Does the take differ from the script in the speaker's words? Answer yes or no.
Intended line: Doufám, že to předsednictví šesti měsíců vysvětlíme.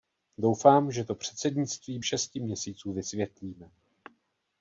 no